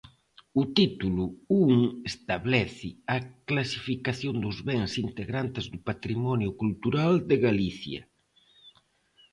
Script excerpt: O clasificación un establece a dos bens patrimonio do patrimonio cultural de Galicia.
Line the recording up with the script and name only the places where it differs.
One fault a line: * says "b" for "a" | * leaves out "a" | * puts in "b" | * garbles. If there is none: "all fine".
* says "título" for "clasificación"
* puts in "clasificación"
* says "integrantes" for "patrimonio"